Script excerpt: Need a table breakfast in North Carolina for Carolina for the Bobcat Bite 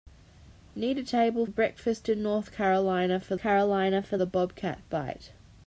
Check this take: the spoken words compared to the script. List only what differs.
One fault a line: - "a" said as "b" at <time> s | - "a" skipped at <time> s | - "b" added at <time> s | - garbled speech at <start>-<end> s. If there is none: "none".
none